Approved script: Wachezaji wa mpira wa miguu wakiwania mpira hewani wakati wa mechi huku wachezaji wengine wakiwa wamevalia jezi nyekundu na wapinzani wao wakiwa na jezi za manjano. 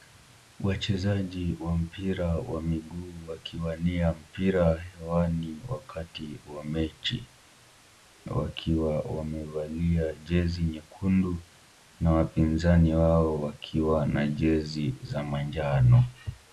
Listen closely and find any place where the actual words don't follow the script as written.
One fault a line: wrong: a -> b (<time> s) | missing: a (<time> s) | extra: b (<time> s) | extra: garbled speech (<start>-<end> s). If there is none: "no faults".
missing: huku wachezaji wengine (7.3 s)